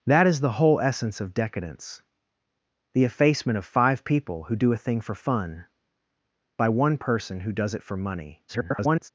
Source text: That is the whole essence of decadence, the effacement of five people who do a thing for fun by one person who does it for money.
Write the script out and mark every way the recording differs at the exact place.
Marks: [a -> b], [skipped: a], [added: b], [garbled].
That is the whole essence of decadence, the effacement of five people who do a thing for fun by one person who does it for money. [garbled]